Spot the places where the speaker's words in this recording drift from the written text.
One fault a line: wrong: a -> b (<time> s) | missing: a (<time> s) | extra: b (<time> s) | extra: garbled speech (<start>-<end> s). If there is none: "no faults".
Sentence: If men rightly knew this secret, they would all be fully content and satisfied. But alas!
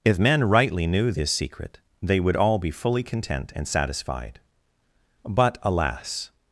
no faults